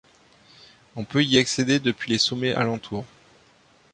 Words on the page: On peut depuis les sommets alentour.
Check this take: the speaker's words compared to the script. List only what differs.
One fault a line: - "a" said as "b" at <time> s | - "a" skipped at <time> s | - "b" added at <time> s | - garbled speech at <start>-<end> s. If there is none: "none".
- "y accéder" added at 1.2 s